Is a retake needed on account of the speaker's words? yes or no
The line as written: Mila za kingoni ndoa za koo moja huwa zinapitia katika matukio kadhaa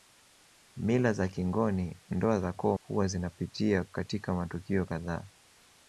yes